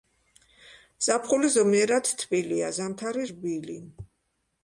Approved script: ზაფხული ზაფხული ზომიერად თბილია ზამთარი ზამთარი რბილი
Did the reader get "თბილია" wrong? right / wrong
right